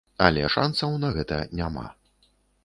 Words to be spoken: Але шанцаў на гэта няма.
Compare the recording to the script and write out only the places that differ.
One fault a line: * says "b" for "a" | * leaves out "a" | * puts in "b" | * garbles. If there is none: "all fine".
all fine